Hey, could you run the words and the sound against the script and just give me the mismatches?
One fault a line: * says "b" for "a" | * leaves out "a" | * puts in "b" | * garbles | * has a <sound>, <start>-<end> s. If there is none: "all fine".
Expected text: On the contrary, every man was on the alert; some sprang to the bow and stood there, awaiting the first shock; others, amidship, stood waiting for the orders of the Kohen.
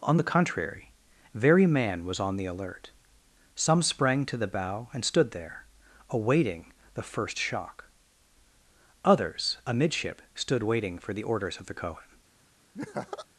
* says "very" for "every"
* has a laugh, 12.7-13.3 s